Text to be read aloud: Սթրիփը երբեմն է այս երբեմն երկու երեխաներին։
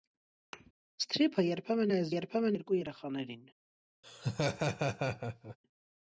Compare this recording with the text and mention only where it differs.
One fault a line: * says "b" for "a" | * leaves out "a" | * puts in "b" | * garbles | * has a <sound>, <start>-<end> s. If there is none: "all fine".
* has a thud, 0.5-0.7 s
* has a laugh, 4.0-5.6 s